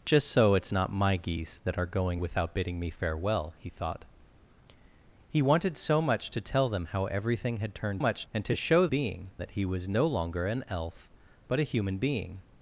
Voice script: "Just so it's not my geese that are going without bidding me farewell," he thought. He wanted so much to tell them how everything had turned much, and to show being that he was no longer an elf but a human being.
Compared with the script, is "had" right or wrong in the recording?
right